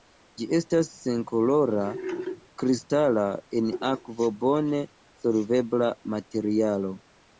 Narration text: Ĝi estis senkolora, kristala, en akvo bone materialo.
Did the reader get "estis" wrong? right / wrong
wrong